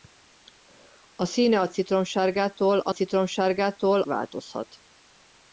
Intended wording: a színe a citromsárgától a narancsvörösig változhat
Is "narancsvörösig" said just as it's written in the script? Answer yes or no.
no